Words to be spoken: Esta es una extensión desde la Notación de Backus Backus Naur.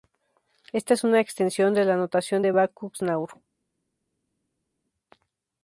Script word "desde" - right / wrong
wrong